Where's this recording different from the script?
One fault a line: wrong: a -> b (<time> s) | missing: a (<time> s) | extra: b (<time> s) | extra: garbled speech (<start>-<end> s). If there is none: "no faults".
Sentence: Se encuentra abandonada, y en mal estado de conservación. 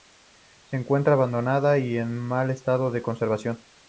no faults